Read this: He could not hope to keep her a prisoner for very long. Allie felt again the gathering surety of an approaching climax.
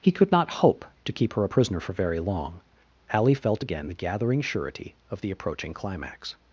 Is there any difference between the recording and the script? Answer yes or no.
yes